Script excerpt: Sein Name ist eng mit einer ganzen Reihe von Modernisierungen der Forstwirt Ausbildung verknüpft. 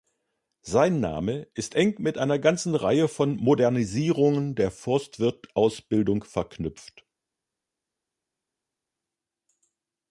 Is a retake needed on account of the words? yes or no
no